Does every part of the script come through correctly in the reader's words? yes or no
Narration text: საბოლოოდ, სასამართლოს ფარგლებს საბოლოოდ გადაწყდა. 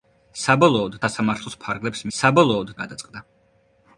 yes